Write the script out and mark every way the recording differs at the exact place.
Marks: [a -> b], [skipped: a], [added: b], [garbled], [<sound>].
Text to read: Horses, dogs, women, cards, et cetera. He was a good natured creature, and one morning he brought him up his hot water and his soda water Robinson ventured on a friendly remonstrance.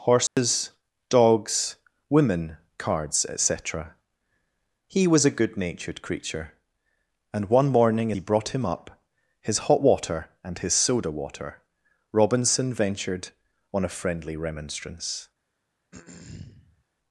Horses, [dropout] dogs, women, cards, et cetera. He was a good natured creature, and one morning he brought him up his hot water and his soda water Robinson ventured on a friendly remonstrance. [throat clearing]